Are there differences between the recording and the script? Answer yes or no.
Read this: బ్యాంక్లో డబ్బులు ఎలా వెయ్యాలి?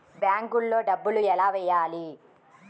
no